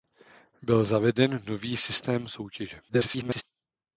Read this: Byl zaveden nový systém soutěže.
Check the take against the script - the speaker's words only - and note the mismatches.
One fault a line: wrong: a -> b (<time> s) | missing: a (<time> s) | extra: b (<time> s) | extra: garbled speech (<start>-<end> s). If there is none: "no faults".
extra: garbled speech (2.9-3.4 s)